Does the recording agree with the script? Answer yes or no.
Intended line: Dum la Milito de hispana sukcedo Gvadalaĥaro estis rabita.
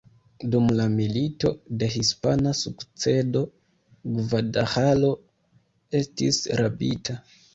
yes